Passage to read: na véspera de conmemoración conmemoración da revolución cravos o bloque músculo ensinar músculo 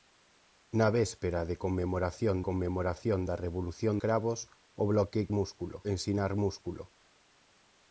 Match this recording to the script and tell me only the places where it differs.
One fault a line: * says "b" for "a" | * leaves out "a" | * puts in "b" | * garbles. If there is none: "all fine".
all fine